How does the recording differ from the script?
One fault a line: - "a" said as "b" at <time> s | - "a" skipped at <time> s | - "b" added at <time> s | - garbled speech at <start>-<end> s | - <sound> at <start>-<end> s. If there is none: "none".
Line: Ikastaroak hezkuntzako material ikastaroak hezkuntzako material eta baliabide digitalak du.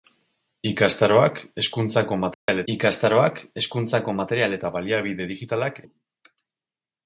- dropout at 2.3-2.5 s